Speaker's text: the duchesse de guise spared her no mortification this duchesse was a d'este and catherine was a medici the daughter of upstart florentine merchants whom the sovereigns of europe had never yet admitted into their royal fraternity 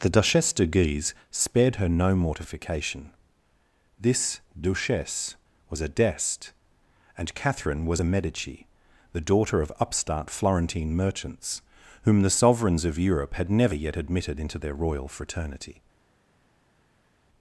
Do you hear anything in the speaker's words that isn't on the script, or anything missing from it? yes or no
no